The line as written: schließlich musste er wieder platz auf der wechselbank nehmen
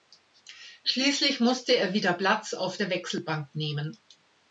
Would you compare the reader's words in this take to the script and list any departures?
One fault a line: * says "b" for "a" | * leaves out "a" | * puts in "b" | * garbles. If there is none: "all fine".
all fine